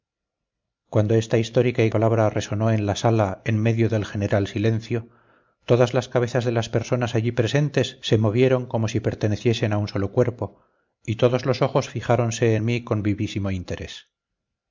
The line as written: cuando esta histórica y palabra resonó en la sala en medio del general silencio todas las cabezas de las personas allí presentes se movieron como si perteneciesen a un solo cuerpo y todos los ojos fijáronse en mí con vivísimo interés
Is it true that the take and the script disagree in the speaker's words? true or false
false